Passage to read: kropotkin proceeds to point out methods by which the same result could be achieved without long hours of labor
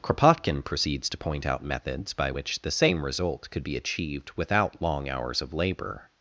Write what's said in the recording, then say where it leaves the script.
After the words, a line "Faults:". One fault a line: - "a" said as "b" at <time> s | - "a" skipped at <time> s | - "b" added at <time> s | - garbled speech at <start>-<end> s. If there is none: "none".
kropotkin proceeds to point out methods by which the same result could be achieved without long hours of labor
Faults:
none